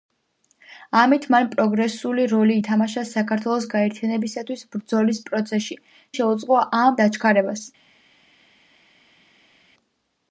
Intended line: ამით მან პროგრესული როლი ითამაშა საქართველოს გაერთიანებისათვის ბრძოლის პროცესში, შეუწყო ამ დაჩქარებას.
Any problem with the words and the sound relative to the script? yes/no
no